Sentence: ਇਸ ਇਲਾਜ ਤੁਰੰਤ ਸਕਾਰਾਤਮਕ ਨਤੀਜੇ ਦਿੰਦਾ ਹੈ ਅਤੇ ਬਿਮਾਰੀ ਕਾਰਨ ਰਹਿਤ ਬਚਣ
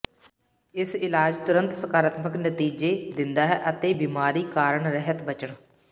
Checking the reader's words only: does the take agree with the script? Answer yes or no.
yes